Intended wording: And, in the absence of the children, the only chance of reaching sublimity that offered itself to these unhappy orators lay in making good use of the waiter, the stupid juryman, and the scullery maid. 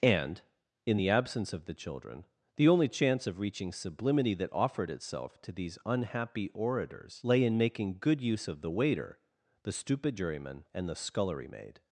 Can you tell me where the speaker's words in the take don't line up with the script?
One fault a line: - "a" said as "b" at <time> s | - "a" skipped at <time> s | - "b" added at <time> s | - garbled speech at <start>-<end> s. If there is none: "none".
none